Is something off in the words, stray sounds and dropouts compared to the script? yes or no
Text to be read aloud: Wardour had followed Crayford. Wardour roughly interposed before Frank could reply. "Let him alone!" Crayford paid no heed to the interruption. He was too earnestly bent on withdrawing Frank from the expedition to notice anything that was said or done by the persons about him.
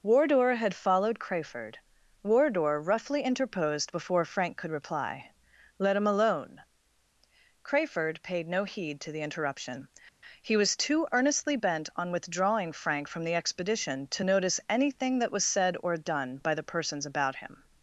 no